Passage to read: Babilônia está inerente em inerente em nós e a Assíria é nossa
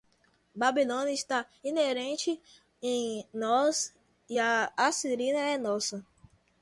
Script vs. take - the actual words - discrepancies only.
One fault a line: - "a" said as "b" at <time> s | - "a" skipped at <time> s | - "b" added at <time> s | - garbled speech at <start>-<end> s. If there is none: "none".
- "inerente em" skipped at 3.3 s